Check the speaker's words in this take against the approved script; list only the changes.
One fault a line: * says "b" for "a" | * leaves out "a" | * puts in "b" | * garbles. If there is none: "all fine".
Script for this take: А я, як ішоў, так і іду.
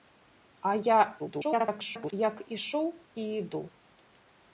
* garbles
* leaves out "так"